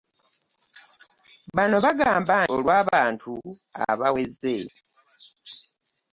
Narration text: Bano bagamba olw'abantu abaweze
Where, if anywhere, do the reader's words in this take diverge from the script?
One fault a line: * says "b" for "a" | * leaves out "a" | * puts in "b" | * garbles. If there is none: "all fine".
all fine